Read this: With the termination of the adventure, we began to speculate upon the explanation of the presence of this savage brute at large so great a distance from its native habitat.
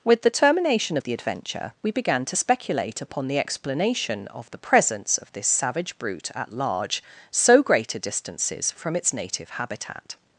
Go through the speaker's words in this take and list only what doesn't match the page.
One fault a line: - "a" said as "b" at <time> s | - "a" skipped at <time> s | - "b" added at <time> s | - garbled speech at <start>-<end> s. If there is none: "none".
- "distance" said as "distances" at 8.0 s